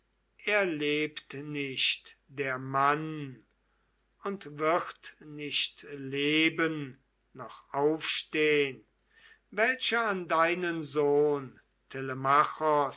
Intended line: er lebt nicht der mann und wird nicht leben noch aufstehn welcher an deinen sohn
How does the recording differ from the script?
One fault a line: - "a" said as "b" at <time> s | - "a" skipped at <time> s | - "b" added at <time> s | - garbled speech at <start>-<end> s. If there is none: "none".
none